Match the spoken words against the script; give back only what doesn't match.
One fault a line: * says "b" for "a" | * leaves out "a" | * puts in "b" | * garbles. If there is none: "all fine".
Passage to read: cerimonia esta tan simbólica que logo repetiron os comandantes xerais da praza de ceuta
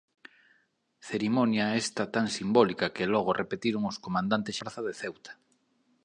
* leaves out "xerais da"